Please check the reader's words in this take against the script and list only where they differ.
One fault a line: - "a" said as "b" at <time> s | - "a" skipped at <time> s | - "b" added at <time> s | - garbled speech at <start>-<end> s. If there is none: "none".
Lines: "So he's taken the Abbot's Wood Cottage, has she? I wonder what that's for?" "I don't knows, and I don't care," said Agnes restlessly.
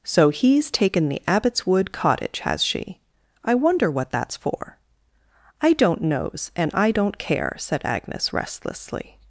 none